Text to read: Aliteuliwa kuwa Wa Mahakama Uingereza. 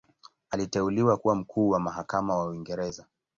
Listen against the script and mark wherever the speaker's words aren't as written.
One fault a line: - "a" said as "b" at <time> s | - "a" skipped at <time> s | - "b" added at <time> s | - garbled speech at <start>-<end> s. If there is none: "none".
- "Mkuu" added at 1.3 s
- "wa" added at 2.4 s